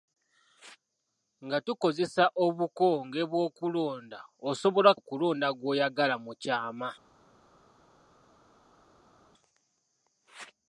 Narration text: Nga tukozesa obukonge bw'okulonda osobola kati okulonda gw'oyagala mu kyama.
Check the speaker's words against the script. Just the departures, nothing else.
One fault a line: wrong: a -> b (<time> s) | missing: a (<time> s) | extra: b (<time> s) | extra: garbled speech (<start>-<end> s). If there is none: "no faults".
missing: kati (4.9 s)